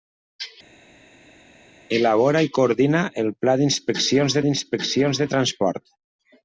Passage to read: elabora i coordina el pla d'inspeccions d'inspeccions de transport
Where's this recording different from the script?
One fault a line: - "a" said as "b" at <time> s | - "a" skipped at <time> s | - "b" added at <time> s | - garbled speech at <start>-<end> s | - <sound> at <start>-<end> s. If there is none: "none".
none